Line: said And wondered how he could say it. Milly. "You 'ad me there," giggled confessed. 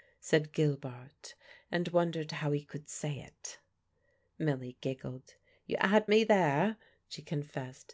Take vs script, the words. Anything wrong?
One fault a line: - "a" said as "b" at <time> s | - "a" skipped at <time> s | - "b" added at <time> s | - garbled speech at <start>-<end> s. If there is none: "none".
- "Gilbart" added at 0.5 s
- "giggled" added at 4.8 s
- "giggled" said as "she" at 7.1 s